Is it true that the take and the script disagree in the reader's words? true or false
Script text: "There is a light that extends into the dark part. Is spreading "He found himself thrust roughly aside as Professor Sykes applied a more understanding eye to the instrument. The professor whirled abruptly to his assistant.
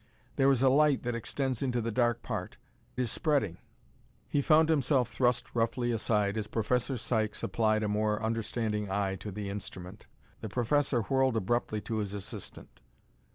false